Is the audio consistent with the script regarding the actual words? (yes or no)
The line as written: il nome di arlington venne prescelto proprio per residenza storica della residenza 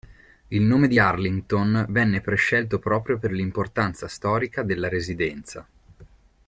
no